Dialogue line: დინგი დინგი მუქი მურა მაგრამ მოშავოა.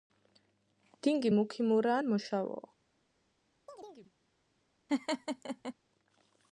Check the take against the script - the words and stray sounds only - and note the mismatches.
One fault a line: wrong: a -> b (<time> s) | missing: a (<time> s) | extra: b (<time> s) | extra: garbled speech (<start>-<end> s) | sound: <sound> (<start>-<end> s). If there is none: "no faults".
missing: დინგი (1.3 s)
wrong: მაგრამ -> ან (2.0 s)
sound: chirp (3.7-4.1 s)
sound: laugh (4.9-5.7 s)